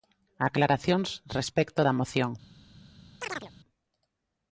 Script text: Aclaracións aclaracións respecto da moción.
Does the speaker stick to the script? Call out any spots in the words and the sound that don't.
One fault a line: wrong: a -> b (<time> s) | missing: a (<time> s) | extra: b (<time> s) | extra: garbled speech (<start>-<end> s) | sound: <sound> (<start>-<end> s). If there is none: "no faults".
missing: aclaracións (1.1 s)
sound: chirp (3.2-3.5 s)